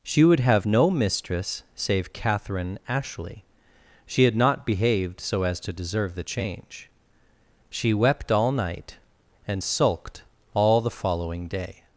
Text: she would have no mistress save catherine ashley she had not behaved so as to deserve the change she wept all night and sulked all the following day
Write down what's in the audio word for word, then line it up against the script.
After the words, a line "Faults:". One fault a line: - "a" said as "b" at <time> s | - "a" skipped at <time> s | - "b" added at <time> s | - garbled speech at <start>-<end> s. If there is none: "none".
she would have no mistress save catherine ashley she had not behaved so as to deserve the change she wept all night and sulked all the following day
Faults:
none